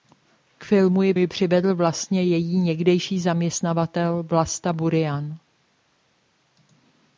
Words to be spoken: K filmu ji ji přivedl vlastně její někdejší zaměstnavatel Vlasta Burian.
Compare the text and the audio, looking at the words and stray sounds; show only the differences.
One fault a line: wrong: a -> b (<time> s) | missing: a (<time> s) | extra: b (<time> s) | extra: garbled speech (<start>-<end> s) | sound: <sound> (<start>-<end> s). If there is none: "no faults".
no faults